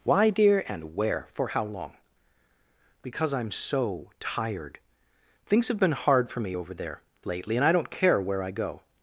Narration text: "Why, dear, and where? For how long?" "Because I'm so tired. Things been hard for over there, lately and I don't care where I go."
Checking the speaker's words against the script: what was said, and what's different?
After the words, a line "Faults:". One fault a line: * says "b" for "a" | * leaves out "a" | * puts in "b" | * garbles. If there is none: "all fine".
"Why, dear, and where? For how long?" "Because I'm so tired. Things have been hard for me over there, lately and I don't care where I go."
Faults:
* puts in "have"
* puts in "me"